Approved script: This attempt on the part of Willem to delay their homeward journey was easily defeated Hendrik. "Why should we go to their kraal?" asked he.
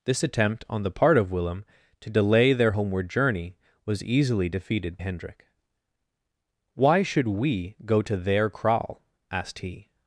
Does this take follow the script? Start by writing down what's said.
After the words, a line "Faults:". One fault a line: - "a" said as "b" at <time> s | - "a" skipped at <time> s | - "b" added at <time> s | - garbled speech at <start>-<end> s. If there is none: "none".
This attempt on the part of Willem to delay their homeward journey was easily defeated Hendrik. "Why should we go to their kraal?" asked he.
Faults:
none